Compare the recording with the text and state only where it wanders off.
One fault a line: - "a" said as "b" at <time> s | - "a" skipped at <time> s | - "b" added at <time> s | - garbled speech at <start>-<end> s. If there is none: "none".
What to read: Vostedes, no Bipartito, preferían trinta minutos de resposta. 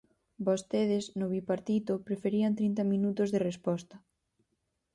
none